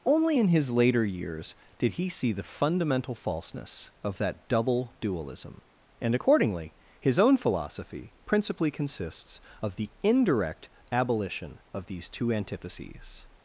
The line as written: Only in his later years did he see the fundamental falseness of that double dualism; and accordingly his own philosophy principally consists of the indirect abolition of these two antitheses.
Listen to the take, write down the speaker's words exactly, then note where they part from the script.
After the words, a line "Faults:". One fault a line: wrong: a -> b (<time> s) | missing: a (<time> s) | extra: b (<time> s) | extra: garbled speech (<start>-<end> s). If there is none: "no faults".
Only in his later years did he see the fundamental falseness of that double dualism; and accordingly his own philosophy principally consists of the indirect abolition of these two antitheses.
Faults:
no faults